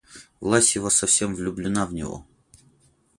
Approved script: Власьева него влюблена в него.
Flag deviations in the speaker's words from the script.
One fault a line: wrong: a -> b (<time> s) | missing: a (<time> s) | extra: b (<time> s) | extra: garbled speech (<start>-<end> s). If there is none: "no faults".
wrong: него -> совсем (0.9 s)